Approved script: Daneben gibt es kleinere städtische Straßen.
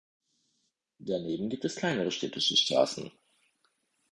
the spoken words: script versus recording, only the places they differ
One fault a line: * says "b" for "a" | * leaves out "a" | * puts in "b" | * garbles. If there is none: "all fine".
all fine